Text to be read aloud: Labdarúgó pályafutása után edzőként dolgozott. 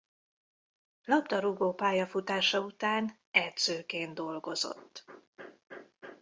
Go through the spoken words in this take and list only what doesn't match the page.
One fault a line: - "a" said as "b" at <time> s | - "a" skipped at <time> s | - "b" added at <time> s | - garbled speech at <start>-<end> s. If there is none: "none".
none